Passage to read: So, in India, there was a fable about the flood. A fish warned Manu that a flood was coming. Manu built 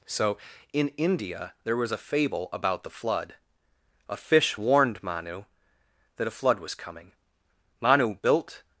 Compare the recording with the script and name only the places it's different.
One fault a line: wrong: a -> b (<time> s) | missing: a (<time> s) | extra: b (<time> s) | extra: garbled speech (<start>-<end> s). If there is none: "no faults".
no faults